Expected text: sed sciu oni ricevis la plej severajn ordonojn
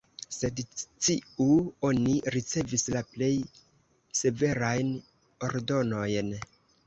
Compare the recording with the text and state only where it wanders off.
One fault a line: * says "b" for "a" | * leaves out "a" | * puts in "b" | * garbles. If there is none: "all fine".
all fine